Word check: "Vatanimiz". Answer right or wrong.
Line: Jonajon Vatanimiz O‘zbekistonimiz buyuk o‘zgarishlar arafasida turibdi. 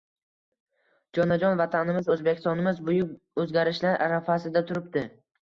right